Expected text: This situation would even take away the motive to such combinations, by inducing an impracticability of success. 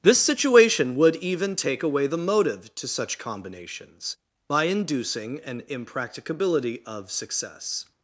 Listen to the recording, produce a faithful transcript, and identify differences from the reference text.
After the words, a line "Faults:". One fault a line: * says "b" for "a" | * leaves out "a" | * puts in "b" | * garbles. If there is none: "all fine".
This situation would even take away the motive to such combinations, by inducing an impracticability of success.
Faults:
all fine